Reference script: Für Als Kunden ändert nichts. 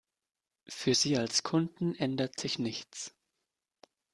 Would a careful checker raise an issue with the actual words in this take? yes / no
yes